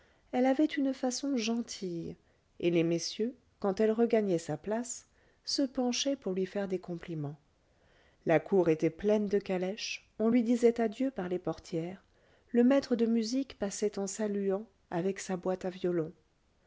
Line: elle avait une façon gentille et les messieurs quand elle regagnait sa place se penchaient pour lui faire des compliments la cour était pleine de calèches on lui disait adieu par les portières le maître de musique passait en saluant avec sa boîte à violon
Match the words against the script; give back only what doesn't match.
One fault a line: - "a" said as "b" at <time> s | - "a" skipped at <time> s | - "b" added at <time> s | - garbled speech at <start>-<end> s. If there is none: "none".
none